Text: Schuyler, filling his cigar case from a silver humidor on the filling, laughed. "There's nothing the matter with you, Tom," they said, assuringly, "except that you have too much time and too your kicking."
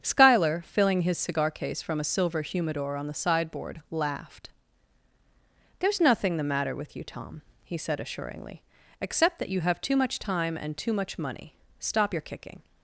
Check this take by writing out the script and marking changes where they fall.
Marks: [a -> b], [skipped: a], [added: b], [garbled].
Schuyler, filling his cigar case from a silver humidor on the [filling, -> sideboard] laughed. "There's nothing the matter with you, Tom," [they -> he] said, assuringly, "except that you have too much time and too [added: much money Stop] your kicking."